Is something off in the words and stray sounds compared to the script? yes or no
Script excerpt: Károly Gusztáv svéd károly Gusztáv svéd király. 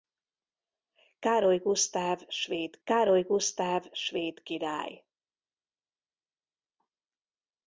no